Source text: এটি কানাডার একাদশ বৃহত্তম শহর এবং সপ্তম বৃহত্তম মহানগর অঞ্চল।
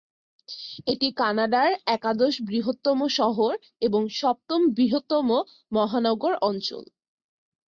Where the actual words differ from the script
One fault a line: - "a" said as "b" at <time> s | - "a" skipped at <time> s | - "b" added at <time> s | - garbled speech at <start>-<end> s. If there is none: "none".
none